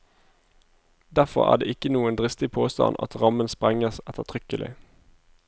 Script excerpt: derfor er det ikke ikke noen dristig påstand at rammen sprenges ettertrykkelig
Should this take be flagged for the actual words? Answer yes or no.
yes